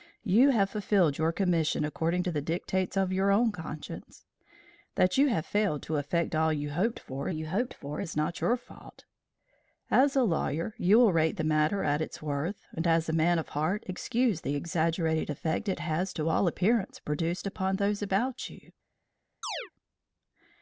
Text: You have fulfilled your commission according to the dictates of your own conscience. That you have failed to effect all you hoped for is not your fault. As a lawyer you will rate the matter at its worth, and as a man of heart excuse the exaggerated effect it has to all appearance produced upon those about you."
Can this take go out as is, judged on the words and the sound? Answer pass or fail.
fail